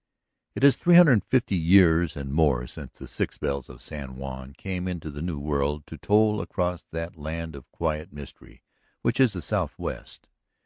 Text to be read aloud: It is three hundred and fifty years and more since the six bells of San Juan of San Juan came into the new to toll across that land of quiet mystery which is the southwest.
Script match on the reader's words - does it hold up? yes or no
no